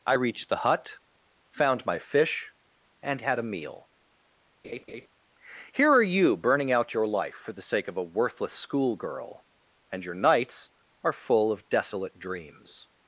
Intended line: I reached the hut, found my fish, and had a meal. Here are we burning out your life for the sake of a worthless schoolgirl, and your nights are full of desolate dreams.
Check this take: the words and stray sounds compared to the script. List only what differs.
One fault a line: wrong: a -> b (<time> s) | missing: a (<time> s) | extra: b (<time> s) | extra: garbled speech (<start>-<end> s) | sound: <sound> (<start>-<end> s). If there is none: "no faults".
sound: laugh (4.6-5.1 s)
wrong: we -> you (6.0 s)